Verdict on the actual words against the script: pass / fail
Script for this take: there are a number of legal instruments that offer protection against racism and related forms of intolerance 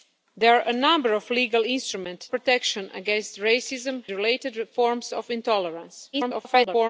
fail